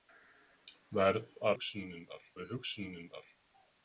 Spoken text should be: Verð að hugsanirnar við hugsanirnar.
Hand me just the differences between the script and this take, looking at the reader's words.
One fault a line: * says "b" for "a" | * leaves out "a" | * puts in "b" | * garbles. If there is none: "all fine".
all fine